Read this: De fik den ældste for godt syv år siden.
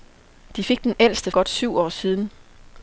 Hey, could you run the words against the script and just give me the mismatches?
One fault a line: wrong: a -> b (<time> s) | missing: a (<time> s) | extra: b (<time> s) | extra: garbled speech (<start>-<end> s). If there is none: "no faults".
missing: for (1.3 s)